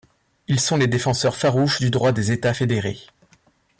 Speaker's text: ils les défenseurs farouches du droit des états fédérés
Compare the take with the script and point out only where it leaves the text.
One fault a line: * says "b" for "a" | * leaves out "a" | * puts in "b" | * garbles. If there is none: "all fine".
* puts in "sont"